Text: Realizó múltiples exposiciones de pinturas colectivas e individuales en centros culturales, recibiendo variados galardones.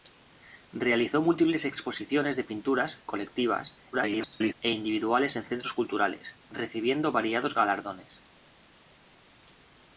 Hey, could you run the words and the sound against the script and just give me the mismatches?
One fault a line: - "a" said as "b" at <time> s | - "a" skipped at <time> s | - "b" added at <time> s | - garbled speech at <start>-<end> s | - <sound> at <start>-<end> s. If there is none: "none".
- garbled speech at 3.9-4.5 s